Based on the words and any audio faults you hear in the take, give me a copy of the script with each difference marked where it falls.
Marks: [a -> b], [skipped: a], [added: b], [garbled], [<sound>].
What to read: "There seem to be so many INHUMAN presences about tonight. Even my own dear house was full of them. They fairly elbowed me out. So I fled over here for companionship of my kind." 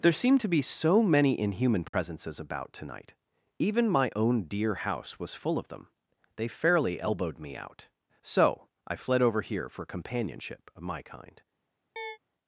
"There seem to be so many INHUMAN presences [dropout] about tonight. Even my own dear house was full of them. They fairly elbowed me out. So I fled over here for companionship of my kind." [chirp]